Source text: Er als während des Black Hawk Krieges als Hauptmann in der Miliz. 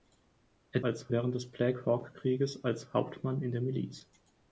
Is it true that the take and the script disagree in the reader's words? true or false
false